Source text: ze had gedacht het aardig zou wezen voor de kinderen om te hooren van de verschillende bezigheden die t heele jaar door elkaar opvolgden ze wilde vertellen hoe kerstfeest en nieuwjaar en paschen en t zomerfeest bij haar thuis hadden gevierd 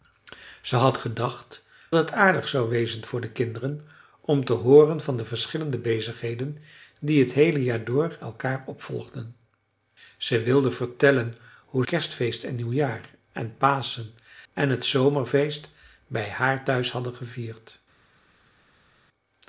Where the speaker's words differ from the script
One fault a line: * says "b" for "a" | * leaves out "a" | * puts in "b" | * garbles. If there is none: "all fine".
all fine